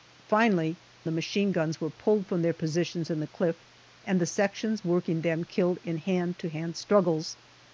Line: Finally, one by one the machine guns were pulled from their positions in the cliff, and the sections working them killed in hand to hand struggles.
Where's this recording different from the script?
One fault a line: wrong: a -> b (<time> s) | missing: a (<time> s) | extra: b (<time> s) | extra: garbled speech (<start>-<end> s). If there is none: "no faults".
missing: one by one (0.8 s)